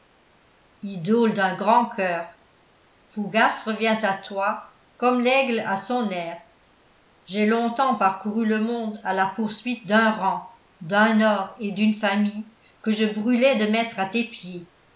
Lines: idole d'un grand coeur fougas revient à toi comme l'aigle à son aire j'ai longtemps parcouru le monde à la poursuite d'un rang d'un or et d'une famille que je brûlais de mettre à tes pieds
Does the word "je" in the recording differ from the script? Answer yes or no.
no